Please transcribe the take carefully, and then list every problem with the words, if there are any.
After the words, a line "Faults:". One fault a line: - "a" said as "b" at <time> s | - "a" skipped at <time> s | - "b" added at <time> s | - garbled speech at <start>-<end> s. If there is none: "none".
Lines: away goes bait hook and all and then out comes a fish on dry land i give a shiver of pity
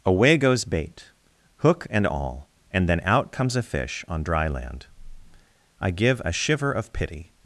away goes bait hook and all and then out comes a fish on dry land i give a shiver of pity
Faults:
none